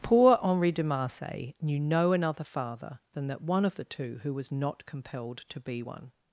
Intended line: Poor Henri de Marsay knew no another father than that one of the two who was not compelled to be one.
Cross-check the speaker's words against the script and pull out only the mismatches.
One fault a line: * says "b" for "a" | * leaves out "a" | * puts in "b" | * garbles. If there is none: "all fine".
all fine